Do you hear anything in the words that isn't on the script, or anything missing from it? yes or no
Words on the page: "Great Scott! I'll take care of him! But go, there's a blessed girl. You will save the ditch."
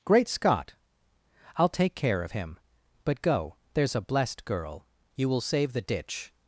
no